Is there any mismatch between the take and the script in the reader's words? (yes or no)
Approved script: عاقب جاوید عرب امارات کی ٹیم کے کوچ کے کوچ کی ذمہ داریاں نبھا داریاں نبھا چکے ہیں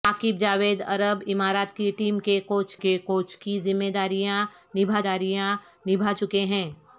no